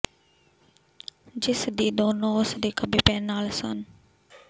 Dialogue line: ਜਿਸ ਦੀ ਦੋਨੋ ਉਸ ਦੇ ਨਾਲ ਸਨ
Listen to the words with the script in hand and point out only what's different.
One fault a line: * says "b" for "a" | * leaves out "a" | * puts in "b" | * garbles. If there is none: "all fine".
* puts in "ਖੱਬੇ ਪੈਰ"